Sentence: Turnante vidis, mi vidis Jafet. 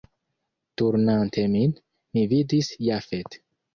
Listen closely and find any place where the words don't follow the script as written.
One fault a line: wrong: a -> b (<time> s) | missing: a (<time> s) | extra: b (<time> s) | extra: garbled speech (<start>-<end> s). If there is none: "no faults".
wrong: vidis -> min (1.6 s)